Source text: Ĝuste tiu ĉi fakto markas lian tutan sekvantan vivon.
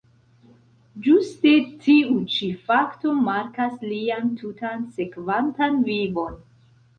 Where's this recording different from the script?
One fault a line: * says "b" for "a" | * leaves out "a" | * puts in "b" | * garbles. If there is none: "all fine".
all fine